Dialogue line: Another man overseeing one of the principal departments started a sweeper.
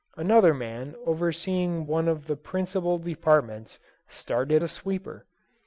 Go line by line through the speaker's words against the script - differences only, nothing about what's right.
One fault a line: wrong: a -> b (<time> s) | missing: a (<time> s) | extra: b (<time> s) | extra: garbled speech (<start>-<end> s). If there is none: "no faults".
no faults